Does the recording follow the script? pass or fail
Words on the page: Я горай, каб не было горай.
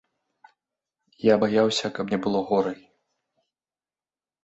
fail